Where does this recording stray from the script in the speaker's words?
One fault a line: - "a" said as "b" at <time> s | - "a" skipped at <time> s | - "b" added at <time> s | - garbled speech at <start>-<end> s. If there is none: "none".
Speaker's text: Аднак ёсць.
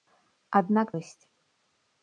none